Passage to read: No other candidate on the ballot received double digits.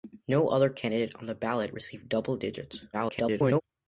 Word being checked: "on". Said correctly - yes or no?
yes